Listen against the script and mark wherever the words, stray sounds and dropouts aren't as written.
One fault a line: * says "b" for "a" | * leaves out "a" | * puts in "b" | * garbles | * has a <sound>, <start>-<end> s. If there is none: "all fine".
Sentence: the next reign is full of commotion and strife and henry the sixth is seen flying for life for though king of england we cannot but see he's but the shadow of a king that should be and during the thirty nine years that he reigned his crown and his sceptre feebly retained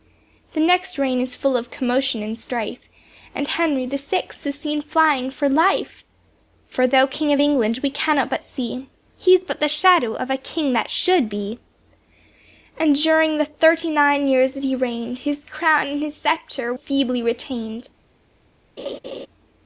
* has a laugh, 18.8-19.3 s